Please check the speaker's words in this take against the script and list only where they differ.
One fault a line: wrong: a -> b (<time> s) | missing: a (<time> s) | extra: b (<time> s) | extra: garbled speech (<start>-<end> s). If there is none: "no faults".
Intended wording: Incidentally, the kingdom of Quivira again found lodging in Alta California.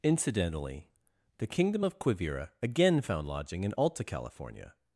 no faults